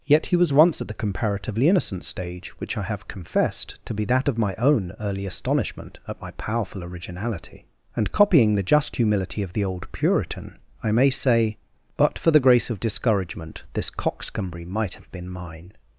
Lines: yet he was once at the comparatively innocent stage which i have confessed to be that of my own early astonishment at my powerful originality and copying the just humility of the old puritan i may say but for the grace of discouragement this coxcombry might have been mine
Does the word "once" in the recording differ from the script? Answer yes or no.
no